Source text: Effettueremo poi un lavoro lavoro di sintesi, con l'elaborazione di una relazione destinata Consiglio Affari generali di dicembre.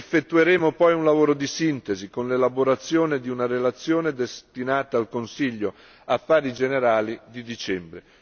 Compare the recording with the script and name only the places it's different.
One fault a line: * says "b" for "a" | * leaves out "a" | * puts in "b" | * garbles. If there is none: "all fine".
* leaves out "lavoro"
* puts in "al"